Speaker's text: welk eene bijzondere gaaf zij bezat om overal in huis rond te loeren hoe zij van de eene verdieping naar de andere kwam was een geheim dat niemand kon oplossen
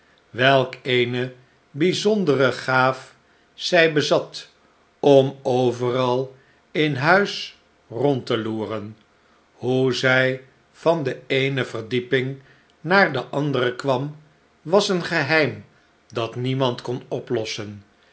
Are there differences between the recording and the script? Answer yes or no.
no